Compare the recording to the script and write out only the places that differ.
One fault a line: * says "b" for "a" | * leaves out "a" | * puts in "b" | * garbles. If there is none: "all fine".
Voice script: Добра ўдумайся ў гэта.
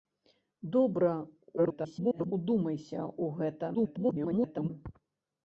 * garbles
* garbles